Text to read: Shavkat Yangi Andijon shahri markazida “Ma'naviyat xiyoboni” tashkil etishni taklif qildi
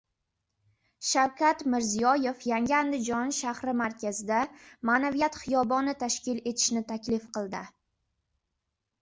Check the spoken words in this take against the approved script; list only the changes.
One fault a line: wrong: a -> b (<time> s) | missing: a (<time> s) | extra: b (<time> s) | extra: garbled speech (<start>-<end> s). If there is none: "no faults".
extra: Mirziyoyev (1.7 s)